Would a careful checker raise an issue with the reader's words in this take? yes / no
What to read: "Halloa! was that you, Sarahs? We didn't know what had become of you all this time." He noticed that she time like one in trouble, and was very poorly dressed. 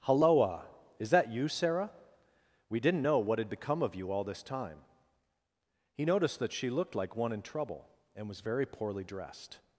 yes